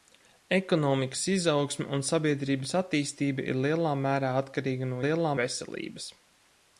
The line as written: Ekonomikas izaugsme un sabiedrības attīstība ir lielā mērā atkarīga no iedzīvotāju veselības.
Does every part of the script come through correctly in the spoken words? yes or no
no